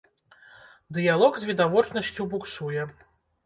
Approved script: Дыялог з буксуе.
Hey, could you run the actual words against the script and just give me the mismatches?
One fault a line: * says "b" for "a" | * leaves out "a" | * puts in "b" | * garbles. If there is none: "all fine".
* puts in "відавочнасцю"